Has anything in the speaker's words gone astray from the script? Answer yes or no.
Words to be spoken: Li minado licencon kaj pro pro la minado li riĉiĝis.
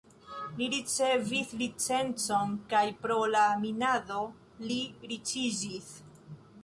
yes